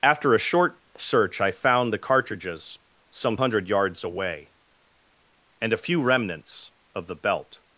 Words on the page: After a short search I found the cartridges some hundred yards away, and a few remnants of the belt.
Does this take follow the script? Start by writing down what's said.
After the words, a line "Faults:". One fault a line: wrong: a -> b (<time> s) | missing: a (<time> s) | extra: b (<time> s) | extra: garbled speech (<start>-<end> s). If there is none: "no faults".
After a short search I found the cartridges some hundred yards away, and a few remnants of the belt.
Faults:
no faults